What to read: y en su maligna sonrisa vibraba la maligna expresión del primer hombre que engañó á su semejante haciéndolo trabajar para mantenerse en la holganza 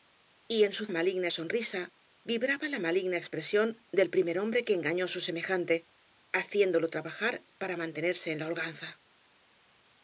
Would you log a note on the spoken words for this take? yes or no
no